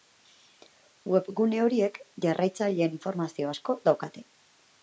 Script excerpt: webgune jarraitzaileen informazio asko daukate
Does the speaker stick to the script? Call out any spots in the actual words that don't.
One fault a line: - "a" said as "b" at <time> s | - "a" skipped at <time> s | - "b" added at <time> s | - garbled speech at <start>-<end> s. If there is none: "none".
- "horiek" added at 1.6 s